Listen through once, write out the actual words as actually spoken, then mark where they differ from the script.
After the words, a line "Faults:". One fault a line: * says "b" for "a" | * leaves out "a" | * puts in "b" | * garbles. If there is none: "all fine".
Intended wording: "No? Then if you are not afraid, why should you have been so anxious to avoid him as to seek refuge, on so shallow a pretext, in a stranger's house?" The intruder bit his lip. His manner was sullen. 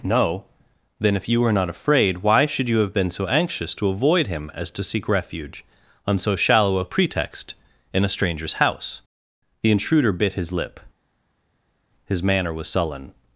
"No? Then if you were not afraid, why should you have been so anxious to avoid him as to seek refuge, on so shallow a pretext, in a stranger's house?" The intruder bit his lip. His manner was sullen.
Faults:
* says "were" for "are"